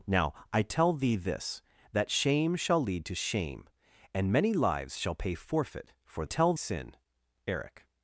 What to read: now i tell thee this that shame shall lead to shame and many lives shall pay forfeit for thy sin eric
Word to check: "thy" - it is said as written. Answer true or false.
false